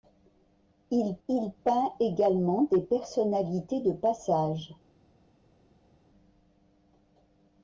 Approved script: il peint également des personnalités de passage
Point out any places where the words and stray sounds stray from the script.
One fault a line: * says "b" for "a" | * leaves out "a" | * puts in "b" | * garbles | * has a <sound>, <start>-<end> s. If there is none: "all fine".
* puts in "il"